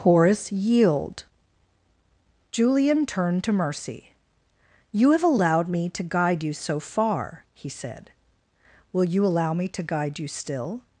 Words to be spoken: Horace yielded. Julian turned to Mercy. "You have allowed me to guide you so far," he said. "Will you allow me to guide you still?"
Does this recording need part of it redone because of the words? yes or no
yes